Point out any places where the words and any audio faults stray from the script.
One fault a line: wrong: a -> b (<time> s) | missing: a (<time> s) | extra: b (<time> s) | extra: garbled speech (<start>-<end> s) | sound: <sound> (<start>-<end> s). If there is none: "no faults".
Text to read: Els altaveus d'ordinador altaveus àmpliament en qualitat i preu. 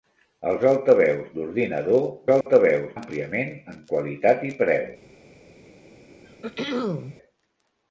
sound: dropout (2.4-2.5 s)
sound: throat clearing (6.1-7.2 s)